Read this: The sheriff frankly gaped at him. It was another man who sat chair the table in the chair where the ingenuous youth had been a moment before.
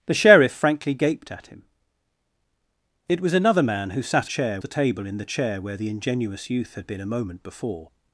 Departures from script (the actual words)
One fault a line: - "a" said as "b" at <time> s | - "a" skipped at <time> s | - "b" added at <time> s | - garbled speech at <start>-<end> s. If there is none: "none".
none